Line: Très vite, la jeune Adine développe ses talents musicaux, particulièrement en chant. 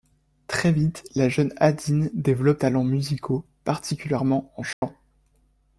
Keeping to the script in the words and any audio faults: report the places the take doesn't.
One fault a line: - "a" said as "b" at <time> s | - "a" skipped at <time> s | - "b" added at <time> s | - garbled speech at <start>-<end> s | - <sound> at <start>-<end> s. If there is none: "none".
- "ses" skipped at 2.6 s
- dropout at 4.7-4.8 s